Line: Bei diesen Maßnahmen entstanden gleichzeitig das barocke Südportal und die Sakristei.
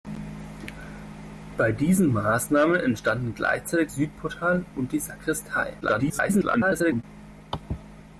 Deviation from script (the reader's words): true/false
true